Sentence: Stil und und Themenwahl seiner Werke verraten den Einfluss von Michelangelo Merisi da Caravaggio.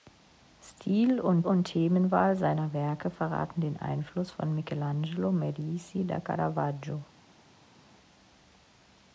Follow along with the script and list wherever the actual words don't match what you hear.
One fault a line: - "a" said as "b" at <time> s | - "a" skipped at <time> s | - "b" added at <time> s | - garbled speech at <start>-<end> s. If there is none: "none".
none